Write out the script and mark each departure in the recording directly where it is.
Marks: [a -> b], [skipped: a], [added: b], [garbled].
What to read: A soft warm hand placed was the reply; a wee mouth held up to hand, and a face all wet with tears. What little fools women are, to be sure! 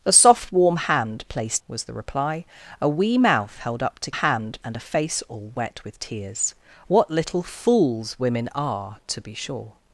A soft warm hand placed was the reply; a wee mouth held up to hand, and a face all wet with tears. What little fools women are, to be sure!